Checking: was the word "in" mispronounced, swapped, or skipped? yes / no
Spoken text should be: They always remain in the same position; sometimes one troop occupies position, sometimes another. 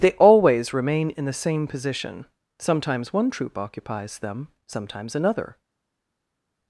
no